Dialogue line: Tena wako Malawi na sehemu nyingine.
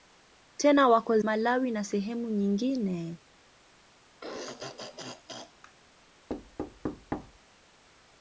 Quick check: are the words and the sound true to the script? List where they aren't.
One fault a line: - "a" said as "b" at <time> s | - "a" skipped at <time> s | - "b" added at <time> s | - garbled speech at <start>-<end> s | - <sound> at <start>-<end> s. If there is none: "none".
- throat clearing at 4.2-5.7 s
- thud at 6.3-7.4 s